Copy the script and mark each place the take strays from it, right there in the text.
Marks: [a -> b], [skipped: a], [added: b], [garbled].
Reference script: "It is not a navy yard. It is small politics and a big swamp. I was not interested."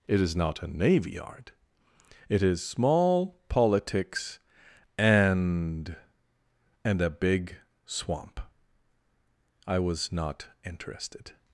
"It is not a navy yard. It is small politics and [added: and] a big swamp. I was not interested."